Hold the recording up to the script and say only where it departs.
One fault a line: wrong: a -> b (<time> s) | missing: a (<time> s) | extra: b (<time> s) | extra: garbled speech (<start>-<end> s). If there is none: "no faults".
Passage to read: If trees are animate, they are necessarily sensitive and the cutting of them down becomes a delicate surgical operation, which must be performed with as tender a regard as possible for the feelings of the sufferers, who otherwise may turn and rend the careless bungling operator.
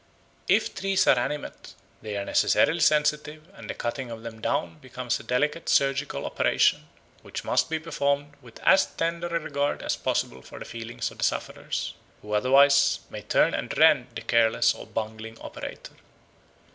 extra: or (14.7 s)